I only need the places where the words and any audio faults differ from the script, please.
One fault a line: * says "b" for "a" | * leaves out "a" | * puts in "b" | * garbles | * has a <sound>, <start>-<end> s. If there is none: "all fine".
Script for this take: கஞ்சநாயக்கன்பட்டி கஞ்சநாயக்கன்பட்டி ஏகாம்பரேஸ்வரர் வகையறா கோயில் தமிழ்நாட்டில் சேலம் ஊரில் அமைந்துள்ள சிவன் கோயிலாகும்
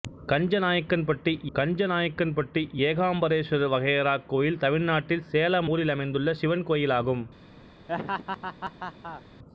* has a laugh, 7.9-9.2 s